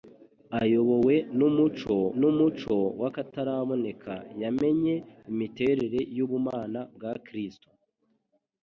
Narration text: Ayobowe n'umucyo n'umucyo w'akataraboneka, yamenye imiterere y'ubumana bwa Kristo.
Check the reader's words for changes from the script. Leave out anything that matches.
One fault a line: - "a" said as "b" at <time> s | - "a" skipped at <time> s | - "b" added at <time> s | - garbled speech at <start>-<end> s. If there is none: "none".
none